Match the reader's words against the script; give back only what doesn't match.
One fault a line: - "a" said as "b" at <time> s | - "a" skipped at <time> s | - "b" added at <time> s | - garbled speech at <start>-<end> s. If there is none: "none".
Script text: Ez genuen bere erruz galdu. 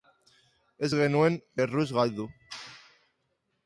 - "bere" skipped at 1.4 s